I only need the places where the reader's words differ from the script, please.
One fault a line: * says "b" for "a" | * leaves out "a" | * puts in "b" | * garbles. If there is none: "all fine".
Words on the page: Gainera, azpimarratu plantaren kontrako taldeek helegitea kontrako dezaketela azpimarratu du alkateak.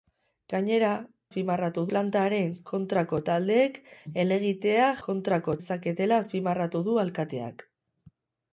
all fine